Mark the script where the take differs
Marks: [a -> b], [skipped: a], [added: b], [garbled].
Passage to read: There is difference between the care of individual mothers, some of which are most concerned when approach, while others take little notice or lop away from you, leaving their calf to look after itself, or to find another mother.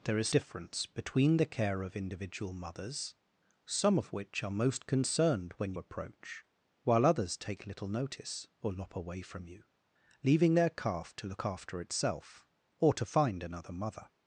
There is difference between the care of individual mothers, some of which are most concerned when approach, while others take little notice or lop away from you, leaving their calf to look after itself, or to find another mother.